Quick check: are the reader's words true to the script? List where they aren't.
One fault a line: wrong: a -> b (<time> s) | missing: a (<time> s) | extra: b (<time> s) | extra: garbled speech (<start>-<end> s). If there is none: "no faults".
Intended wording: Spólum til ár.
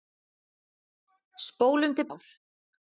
no faults